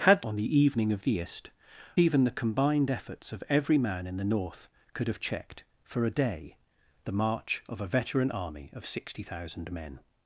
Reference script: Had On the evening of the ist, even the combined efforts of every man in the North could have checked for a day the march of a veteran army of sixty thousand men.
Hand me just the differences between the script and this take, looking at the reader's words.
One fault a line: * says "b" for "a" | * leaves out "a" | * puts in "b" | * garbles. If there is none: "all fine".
all fine